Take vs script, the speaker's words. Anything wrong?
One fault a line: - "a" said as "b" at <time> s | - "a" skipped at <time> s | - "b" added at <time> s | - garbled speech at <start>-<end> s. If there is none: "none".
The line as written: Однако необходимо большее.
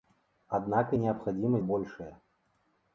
none